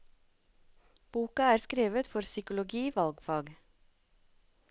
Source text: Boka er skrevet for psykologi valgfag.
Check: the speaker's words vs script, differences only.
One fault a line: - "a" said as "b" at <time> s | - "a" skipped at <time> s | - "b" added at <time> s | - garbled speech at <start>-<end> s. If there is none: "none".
none